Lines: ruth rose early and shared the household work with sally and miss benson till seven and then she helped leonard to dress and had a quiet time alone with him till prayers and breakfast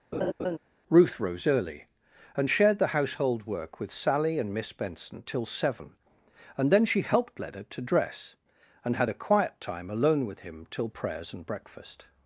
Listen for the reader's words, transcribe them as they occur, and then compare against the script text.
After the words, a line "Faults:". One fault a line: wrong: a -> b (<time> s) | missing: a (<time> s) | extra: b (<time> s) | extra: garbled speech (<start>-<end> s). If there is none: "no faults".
ruth rose early and shared the household work with sally and miss benson till seven and then she helped leonard to dress and had a quiet time alone with him till prayers and breakfast
Faults:
no faults